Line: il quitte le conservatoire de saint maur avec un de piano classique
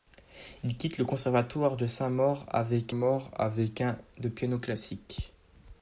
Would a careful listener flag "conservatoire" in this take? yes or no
no